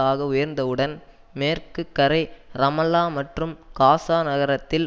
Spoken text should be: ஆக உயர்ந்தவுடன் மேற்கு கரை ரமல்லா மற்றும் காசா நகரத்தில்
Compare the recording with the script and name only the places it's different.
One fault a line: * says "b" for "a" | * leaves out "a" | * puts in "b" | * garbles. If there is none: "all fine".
all fine